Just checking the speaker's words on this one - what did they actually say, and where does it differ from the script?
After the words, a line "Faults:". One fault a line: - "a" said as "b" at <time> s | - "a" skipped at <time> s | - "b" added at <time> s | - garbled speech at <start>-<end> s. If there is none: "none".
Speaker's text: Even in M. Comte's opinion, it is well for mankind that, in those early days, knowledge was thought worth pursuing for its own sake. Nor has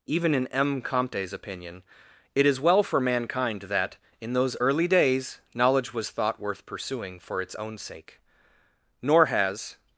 Even in M. Comte's opinion, it is well for mankind that, in those early days, knowledge was thought worth pursuing for its own sake. Nor has
Faults:
none